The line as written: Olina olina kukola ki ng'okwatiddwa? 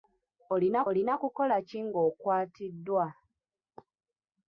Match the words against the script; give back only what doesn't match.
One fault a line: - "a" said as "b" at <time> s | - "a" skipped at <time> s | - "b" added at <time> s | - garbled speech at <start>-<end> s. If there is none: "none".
none